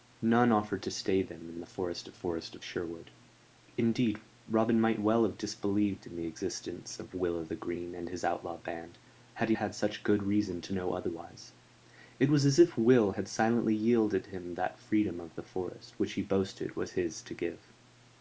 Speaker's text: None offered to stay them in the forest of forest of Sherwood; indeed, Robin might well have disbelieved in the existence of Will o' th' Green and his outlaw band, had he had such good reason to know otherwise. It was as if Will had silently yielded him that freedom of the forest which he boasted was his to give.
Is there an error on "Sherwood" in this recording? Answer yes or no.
no